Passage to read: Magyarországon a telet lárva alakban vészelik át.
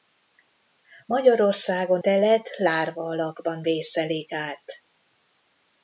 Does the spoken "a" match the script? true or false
false